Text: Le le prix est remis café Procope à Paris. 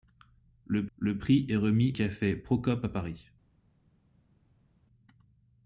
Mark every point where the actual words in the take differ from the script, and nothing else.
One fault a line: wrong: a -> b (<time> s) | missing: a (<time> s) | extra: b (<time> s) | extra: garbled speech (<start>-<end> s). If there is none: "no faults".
no faults